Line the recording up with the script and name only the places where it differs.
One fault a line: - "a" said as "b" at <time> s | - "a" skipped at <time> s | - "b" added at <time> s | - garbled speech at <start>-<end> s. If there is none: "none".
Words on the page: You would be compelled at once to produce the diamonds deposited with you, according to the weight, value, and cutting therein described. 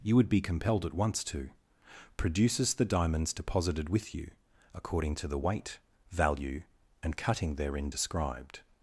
- "produce" said as "produces" at 2.2 s